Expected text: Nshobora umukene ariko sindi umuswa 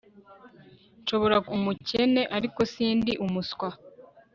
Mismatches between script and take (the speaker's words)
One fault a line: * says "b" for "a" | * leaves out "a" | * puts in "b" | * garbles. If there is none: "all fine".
all fine